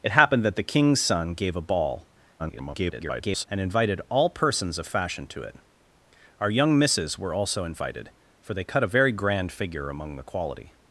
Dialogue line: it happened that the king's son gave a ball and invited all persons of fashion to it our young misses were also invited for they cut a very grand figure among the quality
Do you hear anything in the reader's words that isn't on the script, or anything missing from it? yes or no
yes